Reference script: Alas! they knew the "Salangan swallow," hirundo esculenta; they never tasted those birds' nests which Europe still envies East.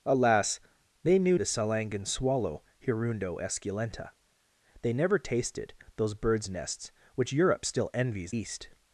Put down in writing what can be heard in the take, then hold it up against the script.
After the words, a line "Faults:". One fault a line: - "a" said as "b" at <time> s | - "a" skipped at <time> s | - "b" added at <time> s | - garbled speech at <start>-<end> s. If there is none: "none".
Alas! they knew the "Salangan swallow," hirundo esculenta; they never tasted those birds' nests which Europe still envies East.
Faults:
none